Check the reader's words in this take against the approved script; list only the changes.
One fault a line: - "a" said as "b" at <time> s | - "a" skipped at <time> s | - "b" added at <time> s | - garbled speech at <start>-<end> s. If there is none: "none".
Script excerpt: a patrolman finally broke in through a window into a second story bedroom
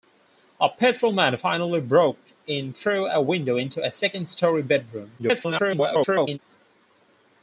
- garbled speech at 5.2-6.4 s